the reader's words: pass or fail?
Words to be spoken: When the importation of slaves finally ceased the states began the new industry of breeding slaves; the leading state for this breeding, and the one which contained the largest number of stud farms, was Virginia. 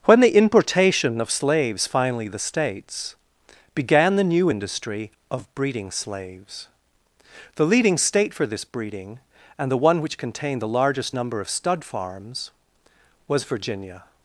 fail